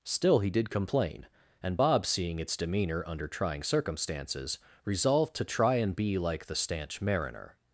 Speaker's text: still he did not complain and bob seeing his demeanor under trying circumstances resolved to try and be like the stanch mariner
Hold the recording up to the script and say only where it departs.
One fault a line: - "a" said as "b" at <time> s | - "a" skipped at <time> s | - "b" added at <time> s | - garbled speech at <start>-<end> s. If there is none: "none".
- "not" skipped at 0.7 s
- "his" said as "its" at 2.4 s